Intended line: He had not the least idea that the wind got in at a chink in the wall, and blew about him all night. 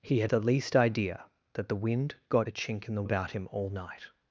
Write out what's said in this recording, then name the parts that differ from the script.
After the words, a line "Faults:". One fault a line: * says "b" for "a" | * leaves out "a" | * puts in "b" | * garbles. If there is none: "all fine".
He had the least idea that the wind got a chink in the about him all night.
Faults:
* leaves out "not"
* leaves out "in at"
* leaves out "wall and blew"